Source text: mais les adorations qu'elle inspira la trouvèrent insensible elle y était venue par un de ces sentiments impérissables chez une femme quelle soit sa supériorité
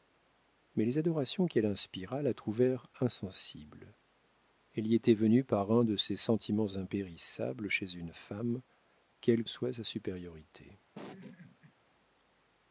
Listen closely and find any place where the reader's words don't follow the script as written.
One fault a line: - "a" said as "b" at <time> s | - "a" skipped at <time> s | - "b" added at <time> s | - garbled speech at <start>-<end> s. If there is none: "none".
none